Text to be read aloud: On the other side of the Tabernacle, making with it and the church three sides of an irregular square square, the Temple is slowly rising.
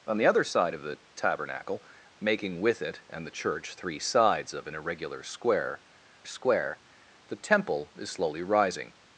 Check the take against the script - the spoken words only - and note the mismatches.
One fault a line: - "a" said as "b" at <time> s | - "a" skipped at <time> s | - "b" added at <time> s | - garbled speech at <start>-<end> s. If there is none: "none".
none